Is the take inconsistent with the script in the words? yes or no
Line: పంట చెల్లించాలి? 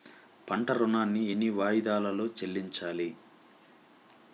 yes